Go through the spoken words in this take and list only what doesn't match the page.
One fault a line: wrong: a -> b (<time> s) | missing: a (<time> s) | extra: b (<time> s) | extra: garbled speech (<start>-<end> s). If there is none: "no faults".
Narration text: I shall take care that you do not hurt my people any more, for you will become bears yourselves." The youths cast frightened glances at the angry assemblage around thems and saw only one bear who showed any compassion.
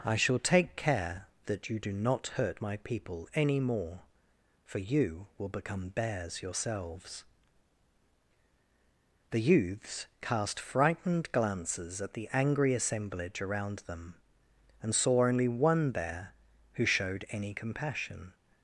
wrong: thems -> them (13.8 s)